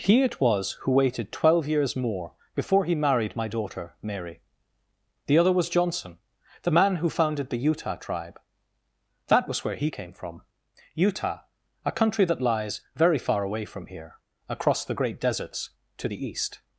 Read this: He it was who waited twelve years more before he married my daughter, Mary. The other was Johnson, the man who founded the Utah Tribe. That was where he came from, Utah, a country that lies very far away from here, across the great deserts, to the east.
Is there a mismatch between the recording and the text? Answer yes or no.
no